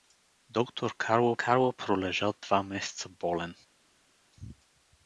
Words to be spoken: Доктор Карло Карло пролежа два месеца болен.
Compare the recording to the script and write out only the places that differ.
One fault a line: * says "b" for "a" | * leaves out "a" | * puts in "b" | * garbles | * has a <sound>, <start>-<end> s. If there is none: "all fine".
all fine